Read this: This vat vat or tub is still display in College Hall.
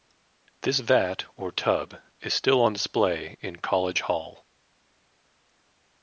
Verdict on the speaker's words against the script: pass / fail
fail